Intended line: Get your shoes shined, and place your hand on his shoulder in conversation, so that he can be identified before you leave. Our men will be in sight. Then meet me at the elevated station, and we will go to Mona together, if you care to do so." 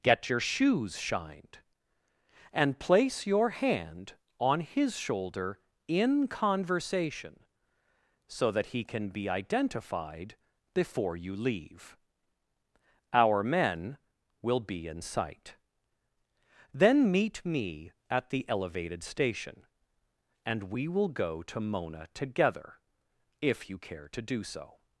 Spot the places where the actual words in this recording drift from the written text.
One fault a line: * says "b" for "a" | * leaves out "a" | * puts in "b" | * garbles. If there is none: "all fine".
all fine